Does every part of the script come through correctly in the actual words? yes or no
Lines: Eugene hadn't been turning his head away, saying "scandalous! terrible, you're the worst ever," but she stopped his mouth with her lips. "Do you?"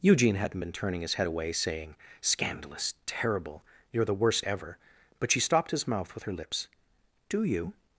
yes